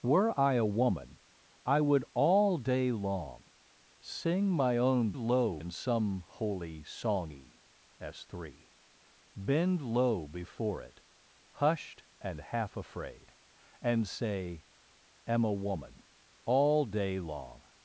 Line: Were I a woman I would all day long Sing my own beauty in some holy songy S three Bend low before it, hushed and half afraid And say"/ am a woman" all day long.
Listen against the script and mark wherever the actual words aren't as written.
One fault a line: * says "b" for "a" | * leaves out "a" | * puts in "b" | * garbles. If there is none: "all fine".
* says "low" for "beauty"